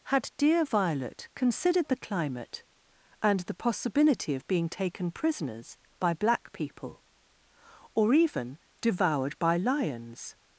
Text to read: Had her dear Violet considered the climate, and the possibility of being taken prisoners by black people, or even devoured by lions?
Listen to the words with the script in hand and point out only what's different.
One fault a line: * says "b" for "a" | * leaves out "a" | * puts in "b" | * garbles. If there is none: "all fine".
* leaves out "her"